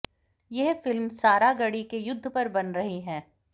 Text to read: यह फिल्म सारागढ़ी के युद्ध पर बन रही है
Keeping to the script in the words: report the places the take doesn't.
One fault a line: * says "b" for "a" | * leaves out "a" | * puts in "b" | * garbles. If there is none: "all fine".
all fine